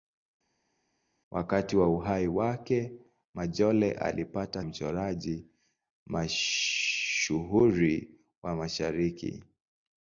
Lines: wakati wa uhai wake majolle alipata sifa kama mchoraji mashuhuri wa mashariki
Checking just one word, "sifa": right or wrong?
wrong